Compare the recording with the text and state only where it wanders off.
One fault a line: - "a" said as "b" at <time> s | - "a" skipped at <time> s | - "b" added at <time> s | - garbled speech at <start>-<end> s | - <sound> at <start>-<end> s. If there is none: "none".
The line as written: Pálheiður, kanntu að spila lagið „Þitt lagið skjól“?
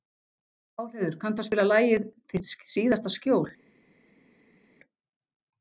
- "lagið" said as "síðasta" at 2.8 s